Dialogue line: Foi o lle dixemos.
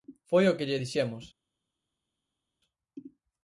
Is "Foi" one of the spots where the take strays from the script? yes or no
no